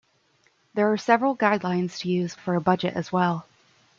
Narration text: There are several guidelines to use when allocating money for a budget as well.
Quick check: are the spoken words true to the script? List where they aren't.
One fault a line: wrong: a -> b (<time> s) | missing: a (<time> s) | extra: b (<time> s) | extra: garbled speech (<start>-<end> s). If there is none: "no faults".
missing: when allocating money (2.4 s)